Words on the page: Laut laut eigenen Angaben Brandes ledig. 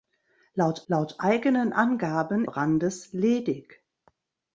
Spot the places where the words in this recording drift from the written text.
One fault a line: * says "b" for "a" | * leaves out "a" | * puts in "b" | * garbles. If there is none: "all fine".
all fine